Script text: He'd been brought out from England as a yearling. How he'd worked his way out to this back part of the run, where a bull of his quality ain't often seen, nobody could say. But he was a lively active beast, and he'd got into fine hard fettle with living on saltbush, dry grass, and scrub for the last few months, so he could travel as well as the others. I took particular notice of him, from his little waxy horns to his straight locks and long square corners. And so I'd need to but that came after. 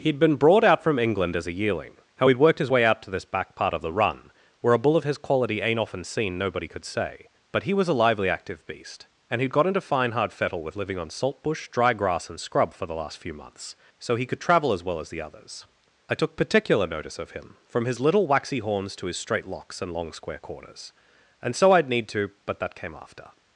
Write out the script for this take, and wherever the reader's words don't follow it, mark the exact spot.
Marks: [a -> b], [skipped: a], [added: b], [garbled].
He'd been brought out from England as a yearling. How he'd worked his way out to this back part of the run, where a bull of his quality ain't often seen, nobody could say. But he was a lively active beast, and he'd got into fine hard fettle with living on saltbush, dry grass, and scrub for the last few months, so he could travel as well as the others. I took particular notice of him, from his little waxy horns to his straight locks and long square corners. And so I'd need to but that came after.